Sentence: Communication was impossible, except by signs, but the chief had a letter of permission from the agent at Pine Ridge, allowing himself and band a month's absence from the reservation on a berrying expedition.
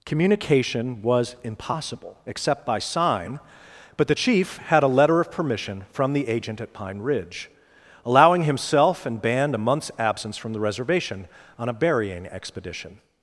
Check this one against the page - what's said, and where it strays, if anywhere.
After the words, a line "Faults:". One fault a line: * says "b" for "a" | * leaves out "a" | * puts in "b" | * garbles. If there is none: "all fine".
Communication was impossible, except by sign, but the chief had a letter of permission from the agent at Pine Ridge, allowing himself and band a month's absence from the reservation on a berrying expedition.
Faults:
* says "sign" for "signs"